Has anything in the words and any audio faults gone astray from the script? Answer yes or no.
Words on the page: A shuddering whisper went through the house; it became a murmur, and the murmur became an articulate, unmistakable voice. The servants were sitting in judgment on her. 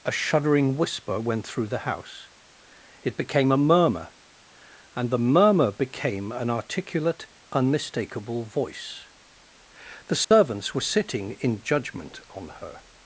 yes